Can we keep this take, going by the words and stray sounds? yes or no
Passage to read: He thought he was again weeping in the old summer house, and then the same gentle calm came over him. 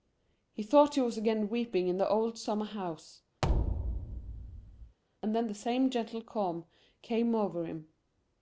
no